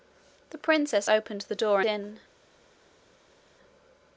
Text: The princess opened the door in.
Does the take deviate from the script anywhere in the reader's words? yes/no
no